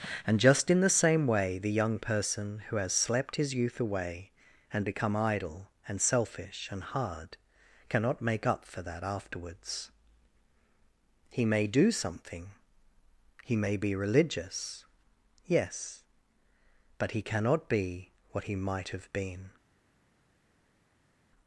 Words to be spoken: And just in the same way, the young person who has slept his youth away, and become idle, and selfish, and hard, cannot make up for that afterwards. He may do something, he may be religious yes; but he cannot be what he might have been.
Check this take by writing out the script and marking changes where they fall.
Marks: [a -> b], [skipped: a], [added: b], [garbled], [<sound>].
And just in the same way, the young person who has slept his youth away, and become idle, and selfish, and hard, cannot make up for that afterwards. He may do something, he may be religious yes; but he cannot be what he might have been.